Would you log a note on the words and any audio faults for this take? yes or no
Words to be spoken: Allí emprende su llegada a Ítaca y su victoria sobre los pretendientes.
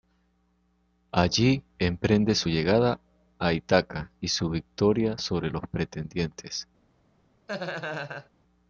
yes